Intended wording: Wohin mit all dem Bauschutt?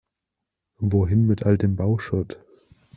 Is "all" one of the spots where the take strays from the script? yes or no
no